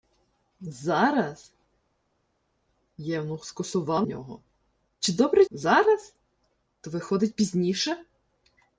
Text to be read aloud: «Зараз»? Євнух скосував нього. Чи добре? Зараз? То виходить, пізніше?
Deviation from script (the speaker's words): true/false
false